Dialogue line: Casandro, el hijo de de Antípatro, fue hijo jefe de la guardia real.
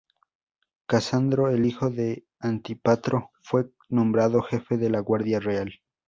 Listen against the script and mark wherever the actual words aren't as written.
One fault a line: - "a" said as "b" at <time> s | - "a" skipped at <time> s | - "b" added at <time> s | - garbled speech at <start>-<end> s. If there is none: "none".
- "de" skipped at 2.2 s
- "hijo" said as "nombrado" at 3.9 s